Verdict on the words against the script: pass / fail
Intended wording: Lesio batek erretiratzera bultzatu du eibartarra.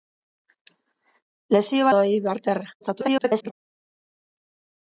fail